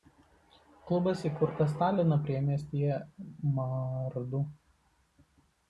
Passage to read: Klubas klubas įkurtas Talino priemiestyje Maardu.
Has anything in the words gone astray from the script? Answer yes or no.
yes